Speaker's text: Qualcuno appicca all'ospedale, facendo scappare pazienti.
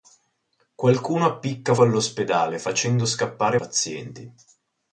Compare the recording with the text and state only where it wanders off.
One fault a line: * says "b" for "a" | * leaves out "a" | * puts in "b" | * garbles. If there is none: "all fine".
all fine